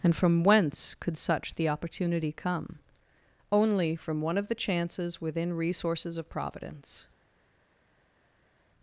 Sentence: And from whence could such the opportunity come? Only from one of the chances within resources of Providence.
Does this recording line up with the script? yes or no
yes